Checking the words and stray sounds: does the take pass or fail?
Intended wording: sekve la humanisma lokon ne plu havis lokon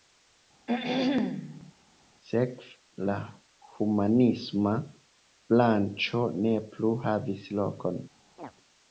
fail